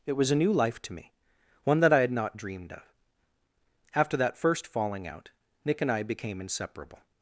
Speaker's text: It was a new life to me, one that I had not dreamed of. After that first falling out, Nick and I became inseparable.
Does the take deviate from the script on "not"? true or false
false